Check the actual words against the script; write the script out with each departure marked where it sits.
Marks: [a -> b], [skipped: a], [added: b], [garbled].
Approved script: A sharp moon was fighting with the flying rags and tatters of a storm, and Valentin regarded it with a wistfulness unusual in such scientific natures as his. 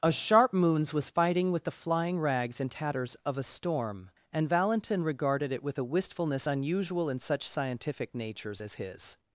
A sharp [moon -> moons] was fighting with the flying rags and tatters of a storm, and Valentin regarded it with a wistfulness unusual in such scientific natures as his.